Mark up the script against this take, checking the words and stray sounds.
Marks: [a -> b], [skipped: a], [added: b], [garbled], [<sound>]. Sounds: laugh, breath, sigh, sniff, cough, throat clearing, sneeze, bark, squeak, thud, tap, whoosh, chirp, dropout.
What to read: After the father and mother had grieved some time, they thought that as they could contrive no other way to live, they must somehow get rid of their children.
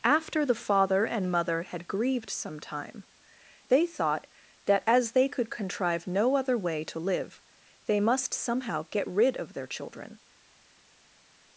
After the father and mother had grieved some time, they thought that as they could contrive no other way to live, they must somehow get rid of their children.